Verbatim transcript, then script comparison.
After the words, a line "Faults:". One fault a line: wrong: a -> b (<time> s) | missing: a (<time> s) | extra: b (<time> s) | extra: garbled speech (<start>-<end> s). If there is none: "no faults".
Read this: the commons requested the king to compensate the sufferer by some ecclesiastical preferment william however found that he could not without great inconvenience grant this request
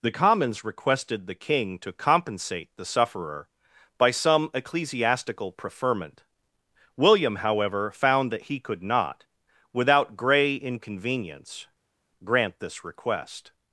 the commons requested the king to compensate the sufferer by some ecclesiastical preferment william however found that he could not without grey inconvenience grant this request
Faults:
wrong: great -> grey (10.2 s)